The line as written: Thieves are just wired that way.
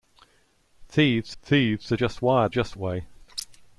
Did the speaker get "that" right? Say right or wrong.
wrong